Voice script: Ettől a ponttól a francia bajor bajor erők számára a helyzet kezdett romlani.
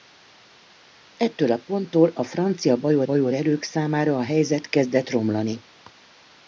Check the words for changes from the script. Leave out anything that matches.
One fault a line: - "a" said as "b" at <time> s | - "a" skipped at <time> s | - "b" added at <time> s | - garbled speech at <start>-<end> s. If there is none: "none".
none